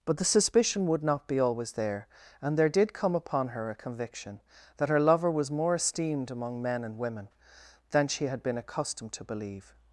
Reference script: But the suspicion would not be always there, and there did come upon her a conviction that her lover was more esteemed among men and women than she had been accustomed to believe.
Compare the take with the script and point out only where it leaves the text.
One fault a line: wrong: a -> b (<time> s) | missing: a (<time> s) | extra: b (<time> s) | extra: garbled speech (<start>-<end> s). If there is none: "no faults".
no faults